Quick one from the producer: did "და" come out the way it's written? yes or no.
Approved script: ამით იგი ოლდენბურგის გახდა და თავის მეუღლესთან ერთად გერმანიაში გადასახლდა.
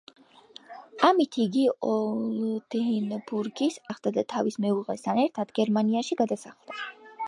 yes